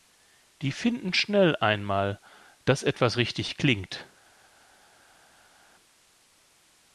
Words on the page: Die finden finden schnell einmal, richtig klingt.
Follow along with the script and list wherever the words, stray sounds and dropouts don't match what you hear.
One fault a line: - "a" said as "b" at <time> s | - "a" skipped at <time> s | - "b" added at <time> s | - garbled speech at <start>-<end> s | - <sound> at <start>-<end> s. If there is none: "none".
- "finden" skipped at 1.1 s
- "dass etwas" added at 2.6 s